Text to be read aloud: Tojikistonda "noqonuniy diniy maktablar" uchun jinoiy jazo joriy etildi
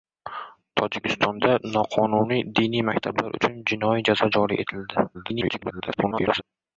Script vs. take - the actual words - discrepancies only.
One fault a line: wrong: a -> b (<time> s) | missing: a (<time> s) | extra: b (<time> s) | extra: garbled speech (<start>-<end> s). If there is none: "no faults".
extra: garbled speech (5.1-6.4 s)